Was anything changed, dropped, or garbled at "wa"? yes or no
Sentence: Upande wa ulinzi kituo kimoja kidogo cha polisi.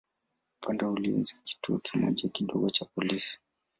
no